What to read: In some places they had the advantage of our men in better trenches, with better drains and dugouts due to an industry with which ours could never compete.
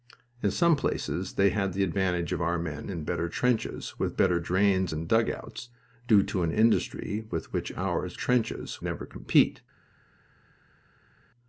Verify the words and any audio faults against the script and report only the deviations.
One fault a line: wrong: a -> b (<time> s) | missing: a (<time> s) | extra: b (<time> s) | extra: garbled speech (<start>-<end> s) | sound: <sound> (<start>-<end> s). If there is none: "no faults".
wrong: could -> trenches (8.1 s)